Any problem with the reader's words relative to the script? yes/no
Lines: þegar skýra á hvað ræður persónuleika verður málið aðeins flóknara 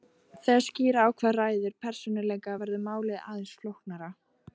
no